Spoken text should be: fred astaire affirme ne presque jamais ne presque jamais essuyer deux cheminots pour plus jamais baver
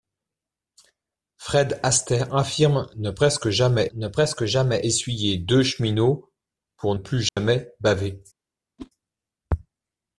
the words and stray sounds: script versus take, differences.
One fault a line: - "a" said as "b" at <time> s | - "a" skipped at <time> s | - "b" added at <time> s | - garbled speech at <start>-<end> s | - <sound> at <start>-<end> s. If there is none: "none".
- dropout at 7.3-7.4 s
- whoosh at 8.8-8.9 s